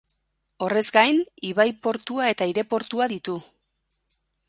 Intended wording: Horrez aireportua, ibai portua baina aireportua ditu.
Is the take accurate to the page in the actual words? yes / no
no